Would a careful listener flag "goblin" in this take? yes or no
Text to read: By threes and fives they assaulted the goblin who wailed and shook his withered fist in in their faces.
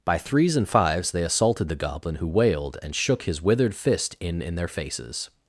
no